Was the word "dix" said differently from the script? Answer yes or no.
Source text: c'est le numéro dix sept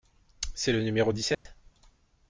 no